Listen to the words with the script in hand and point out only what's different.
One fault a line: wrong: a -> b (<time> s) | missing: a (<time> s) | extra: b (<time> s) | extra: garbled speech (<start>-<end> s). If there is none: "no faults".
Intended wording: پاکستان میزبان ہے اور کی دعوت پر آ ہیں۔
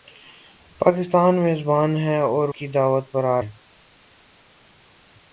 no faults